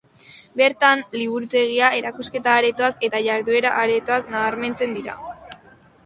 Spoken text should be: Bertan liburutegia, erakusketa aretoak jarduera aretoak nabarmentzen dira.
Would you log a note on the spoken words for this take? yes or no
yes